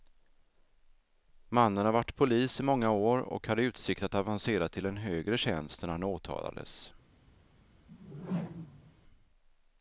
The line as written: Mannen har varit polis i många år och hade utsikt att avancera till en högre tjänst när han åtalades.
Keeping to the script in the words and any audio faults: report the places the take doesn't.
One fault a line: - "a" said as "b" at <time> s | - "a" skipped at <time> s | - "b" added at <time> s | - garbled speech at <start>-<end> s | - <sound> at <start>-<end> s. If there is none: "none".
- whoosh at 7.9-8.9 s